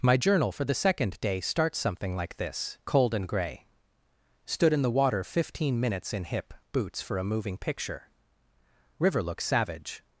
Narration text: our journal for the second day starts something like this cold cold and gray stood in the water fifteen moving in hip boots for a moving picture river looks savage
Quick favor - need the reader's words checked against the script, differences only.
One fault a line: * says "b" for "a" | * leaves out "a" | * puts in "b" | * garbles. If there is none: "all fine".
* says "my" for "our"
* leaves out "cold"
* says "minutes" for "moving"